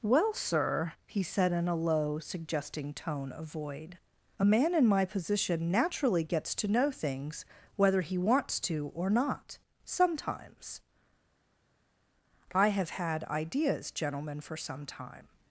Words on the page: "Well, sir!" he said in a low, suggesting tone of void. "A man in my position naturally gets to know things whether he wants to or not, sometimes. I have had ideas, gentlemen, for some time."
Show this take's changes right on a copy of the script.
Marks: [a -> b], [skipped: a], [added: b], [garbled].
"Well, sir!" he said in a low, suggesting tone of void. "A man in my position naturally gets to know things whether he wants to or not, sometimes. I have had ideas, gentlemen, for some time."